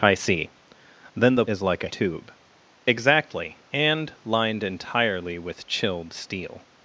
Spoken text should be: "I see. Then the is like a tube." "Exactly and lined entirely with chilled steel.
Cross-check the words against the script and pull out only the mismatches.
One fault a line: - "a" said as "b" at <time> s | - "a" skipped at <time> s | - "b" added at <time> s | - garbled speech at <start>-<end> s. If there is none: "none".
none